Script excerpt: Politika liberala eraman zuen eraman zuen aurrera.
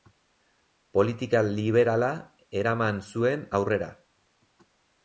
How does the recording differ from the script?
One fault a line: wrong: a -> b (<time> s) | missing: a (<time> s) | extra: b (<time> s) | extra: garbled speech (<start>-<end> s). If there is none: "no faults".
missing: eraman zuen (3.5 s)